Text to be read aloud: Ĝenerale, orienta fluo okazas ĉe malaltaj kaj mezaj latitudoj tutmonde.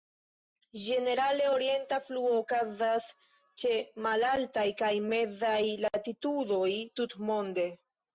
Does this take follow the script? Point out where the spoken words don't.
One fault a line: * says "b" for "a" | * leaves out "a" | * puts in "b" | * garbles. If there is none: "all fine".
all fine